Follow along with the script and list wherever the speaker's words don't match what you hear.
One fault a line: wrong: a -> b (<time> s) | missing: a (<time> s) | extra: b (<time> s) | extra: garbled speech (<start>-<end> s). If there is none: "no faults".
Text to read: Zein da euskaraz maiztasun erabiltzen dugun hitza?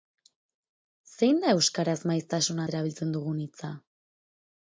no faults